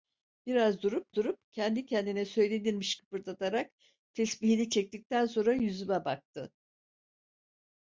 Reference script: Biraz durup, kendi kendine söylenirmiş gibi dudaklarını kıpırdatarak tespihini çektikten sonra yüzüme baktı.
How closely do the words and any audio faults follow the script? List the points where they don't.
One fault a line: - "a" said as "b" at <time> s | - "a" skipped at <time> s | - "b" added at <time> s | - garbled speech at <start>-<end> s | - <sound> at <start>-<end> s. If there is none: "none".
- "durup" added at 1.1 s
- "gibi dudaklarını" skipped at 3.0 s